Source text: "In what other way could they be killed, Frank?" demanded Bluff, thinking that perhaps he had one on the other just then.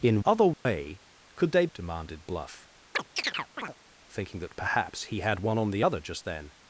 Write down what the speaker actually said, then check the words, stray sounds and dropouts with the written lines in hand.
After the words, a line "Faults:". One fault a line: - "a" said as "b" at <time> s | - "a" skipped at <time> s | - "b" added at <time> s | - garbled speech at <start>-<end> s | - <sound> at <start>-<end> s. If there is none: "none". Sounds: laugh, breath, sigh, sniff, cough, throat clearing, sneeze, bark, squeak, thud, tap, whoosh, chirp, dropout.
"In other way could they?" demanded Bluff, thinking that perhaps he had one on the other just then.
Faults:
- "what" skipped at 0.2 s
- dropout at 0.5-0.7 s
- "be killed Frank" skipped at 1.7 s
- chirp at 2.9-3.7 s